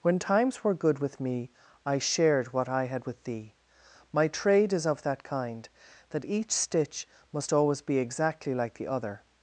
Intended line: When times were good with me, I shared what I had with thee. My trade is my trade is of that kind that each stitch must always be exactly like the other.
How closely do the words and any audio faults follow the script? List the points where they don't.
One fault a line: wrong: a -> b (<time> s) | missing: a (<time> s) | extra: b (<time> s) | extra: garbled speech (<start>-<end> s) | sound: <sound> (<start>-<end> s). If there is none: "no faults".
missing: my trade is (4.9 s)